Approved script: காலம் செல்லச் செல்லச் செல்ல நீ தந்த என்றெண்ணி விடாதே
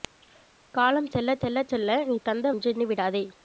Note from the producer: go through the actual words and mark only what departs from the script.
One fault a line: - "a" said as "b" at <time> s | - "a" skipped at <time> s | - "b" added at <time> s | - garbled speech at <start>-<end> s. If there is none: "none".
none